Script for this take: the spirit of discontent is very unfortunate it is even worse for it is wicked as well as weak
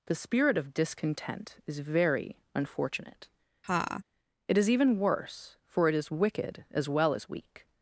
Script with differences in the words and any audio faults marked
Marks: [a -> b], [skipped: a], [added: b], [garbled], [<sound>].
the spirit of discontent is very unfortunate [laugh] it is even worse for it is wicked as well as weak